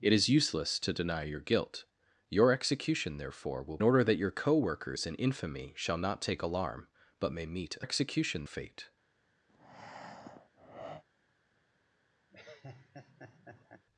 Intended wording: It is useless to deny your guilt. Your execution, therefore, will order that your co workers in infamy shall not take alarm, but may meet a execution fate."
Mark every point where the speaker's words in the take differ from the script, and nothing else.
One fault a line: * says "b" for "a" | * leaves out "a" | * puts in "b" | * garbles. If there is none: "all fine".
all fine